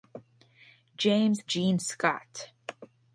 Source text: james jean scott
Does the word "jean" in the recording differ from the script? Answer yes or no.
no